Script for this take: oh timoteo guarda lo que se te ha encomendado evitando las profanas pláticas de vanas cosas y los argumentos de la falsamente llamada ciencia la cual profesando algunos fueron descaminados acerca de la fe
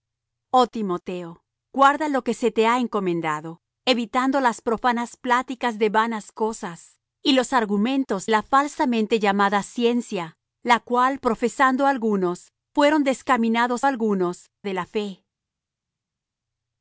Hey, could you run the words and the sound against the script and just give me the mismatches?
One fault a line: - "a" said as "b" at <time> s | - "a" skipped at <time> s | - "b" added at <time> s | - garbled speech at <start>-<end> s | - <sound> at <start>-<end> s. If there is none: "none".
- "de" skipped at 8.3 s
- "acerca" said as "algunos" at 13.9 s